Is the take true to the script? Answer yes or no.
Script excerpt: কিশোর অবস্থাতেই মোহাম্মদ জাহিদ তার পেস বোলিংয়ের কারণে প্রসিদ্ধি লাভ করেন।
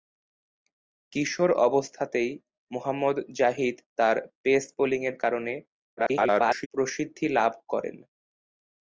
no